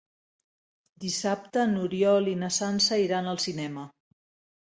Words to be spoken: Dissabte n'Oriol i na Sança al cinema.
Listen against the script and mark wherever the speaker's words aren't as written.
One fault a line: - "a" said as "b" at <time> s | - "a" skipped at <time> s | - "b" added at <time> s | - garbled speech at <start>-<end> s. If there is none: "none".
- "iran" added at 3.0 s